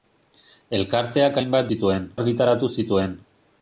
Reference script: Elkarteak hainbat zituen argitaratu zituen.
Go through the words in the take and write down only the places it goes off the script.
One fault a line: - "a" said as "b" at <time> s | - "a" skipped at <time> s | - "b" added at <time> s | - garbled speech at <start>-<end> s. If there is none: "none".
none